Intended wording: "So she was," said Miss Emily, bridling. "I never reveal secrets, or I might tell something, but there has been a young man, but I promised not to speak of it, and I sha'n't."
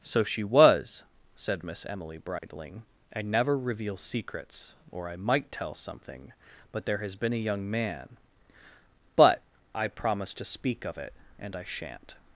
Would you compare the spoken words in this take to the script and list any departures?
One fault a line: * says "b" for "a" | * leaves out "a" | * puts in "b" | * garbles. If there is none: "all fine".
* leaves out "not"